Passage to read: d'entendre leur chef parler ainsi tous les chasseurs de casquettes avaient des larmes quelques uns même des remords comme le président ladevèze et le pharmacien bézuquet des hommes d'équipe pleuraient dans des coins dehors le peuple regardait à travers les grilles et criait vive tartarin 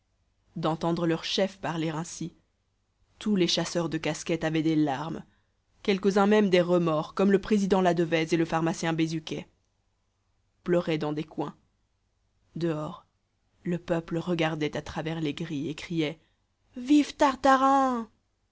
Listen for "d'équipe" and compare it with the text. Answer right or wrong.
wrong